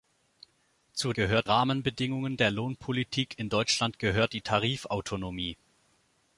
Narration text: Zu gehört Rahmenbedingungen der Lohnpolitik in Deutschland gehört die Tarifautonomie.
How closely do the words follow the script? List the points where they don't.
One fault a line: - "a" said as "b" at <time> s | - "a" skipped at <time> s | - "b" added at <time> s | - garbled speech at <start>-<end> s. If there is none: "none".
none